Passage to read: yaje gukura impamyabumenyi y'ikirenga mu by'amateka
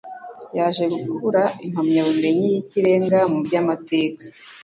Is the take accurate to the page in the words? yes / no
yes